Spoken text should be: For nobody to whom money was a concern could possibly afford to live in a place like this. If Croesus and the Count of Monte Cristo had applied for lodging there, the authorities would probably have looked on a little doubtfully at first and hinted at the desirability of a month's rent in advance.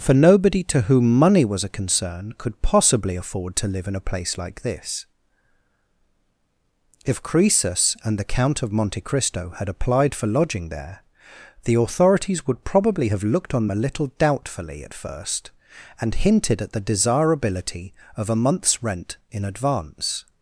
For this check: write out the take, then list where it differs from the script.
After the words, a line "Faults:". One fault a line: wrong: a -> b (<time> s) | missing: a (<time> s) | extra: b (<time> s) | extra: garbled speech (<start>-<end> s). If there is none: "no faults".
For nobody to whom money was a concern could possibly afford to live in a place like this. If Croesus and the Count of Monte Cristo had applied for lodging there, the authorities would probably have looked on a little doubtfully at first and hinted at the desirability of a month's rent in advance.
Faults:
no faults